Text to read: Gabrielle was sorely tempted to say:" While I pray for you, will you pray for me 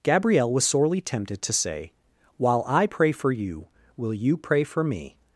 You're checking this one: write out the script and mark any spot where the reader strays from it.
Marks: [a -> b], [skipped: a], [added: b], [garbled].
Gabrielle was sorely tempted to say:" While I pray for you, will you pray for me